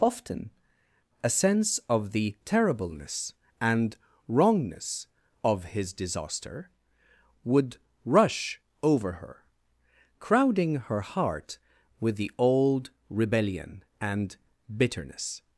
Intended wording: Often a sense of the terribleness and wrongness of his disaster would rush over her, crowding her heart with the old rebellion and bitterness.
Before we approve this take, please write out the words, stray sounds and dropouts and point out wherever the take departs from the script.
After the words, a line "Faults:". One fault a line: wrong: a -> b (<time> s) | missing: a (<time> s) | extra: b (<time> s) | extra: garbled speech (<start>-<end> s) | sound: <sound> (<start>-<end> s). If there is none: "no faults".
Often a sense of the terribleness and wrongness of his disaster would rush over her, crowding her heart with the old rebellion and bitterness.
Faults:
no faults